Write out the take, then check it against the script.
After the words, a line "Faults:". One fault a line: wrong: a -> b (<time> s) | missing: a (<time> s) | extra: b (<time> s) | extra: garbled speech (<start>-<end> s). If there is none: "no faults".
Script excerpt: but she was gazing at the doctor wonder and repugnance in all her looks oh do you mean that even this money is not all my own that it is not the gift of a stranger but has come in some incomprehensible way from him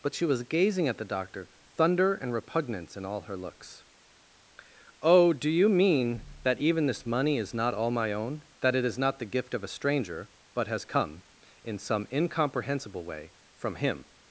but she was gazing at the doctor thunder and repugnance in all her looks oh do you mean that even this money is not all my own that it is not the gift of a stranger but has come in some incomprehensible way from him
Faults:
wrong: wonder -> thunder (1.6 s)